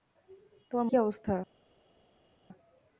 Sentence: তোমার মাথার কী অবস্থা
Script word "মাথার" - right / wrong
wrong